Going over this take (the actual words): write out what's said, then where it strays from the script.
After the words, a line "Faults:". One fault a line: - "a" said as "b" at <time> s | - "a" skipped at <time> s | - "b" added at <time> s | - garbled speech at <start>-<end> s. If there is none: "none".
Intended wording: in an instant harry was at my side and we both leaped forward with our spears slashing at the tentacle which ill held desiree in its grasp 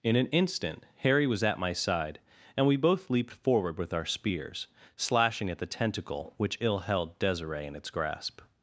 in an instant harry was at my side and we both leaped forward with our spears slashing at the tentacle which ill held desiree in its grasp
Faults:
none